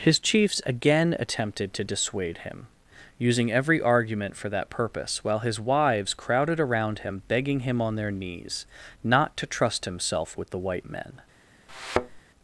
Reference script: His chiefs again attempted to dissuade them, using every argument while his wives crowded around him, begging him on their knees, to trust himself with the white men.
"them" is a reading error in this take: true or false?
true